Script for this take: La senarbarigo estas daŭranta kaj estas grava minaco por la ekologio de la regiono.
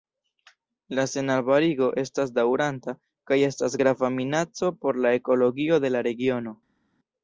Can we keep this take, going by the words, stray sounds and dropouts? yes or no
yes